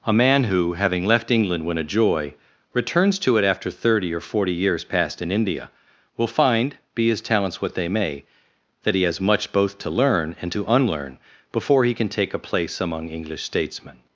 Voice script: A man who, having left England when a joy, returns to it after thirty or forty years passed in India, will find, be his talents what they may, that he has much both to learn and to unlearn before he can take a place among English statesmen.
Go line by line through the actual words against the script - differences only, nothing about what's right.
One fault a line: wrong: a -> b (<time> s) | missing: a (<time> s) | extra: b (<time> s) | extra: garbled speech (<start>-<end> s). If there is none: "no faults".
no faults